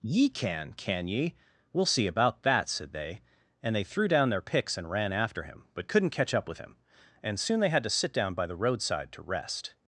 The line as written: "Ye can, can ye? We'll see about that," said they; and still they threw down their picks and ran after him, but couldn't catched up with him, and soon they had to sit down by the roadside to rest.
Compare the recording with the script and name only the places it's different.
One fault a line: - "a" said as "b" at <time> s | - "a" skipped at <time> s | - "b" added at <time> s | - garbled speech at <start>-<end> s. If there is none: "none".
- "still" skipped at 3.8 s
- "catched" said as "catch" at 6.1 s